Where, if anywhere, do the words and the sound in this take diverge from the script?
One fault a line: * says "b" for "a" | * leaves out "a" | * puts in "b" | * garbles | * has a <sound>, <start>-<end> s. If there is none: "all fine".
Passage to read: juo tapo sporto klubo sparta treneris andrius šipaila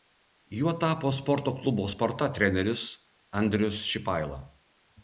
all fine